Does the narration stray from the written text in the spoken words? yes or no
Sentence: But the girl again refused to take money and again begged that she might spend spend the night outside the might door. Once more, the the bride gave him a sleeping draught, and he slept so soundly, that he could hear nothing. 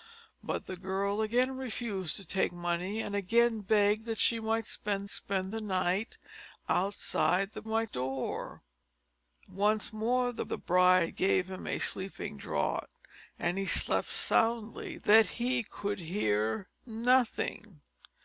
no